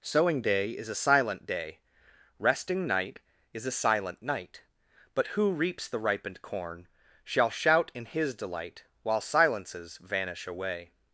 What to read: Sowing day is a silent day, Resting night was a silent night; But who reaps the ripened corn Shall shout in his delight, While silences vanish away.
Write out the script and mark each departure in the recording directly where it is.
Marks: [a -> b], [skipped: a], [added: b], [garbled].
Sowing day is a silent day, Resting night [was -> is] a silent night; But who reaps the ripened corn Shall shout in his delight, While silences vanish away.